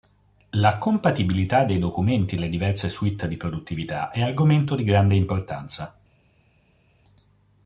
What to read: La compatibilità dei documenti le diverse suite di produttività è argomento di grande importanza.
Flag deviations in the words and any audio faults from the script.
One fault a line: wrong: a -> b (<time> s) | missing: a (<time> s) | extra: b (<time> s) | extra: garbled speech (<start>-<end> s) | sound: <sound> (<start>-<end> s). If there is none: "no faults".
no faults